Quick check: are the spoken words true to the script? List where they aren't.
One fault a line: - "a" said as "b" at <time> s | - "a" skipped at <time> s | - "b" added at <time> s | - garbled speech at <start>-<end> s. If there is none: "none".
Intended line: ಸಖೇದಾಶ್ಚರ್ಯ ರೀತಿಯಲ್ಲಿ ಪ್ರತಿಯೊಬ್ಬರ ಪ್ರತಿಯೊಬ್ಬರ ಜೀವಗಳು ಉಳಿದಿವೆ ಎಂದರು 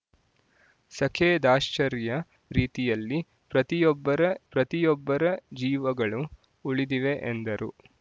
none